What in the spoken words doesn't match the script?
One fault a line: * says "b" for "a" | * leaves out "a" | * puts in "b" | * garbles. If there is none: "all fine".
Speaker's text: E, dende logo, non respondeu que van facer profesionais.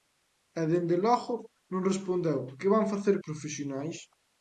all fine